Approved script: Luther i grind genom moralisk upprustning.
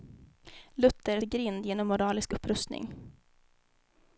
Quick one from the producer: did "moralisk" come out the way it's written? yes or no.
yes